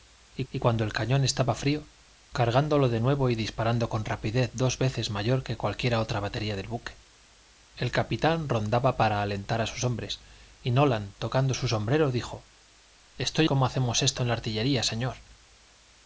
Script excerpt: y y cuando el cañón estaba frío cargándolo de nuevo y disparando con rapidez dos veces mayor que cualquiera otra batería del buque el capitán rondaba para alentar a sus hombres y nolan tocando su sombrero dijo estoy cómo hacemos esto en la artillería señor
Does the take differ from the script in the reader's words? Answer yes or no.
no